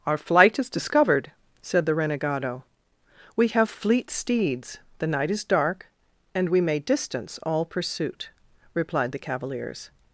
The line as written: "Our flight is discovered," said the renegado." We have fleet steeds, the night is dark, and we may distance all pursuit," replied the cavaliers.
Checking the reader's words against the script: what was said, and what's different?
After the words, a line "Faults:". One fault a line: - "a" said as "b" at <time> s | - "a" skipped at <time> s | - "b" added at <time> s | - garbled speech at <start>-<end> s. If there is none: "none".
"Our flight is discovered," said the renegado." We have fleet steeds, the night is dark, and we may distance all pursuit," replied the cavaliers.
Faults:
none